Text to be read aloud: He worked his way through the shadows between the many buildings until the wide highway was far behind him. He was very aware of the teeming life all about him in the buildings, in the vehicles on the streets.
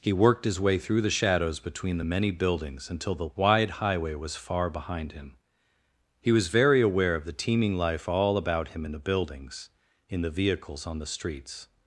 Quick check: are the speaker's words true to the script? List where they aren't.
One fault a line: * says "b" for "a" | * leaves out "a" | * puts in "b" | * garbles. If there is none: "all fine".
all fine